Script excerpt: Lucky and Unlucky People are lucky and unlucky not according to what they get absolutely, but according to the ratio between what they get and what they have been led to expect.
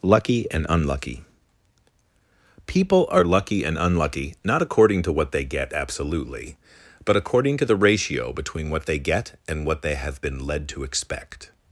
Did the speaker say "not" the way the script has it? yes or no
yes